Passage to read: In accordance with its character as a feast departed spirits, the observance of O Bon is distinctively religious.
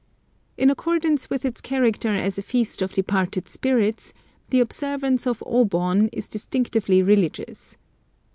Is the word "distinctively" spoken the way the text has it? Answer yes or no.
yes